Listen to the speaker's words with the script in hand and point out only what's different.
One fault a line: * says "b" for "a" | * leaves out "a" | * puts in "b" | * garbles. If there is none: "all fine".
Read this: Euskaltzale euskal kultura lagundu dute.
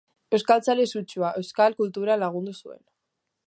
* puts in "sutsua"
* says "zuen" for "dute"